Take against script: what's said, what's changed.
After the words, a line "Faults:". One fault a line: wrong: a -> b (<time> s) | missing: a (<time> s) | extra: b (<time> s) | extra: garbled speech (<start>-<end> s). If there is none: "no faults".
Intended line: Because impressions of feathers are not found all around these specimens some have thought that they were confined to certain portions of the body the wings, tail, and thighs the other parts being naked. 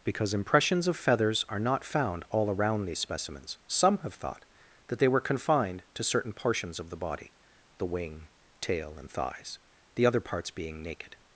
Because impressions of feathers are not found all around these specimens some have thought that they were confined to certain portions of the body the wing, tail, and thighs the other parts being naked.
Faults:
wrong: wings -> wing (7.8 s)